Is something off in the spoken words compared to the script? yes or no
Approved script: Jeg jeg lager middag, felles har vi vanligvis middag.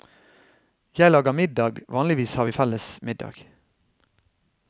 yes